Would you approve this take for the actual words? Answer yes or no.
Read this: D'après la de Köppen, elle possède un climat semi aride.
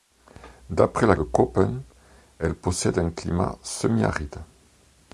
yes